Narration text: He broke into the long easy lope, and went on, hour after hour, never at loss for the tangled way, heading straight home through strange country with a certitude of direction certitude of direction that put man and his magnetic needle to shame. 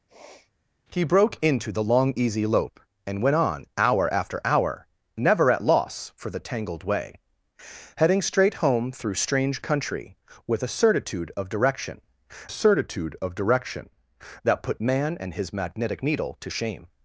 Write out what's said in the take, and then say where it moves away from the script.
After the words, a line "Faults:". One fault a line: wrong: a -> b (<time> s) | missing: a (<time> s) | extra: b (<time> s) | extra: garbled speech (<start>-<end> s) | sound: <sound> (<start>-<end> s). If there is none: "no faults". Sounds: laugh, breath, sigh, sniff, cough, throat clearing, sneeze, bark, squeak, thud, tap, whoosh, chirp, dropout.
He broke into the long easy lope, and went on, hour after hour, never at loss for the tangled way, heading straight home through strange country with a certitude of direction certitude of direction that put man and his magnetic needle to shame.
Faults:
sound: sniff (0.1-0.5 s)